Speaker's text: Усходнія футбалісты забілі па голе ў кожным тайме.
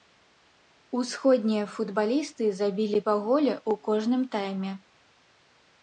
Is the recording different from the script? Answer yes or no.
no